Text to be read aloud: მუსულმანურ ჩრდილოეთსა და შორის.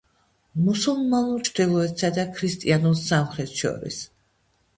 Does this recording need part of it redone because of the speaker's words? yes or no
yes